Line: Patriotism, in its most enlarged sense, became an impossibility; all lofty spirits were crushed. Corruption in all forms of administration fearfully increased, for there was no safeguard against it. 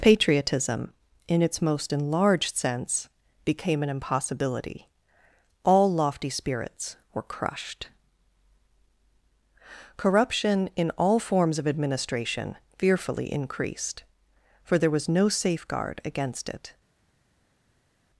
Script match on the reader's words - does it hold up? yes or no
yes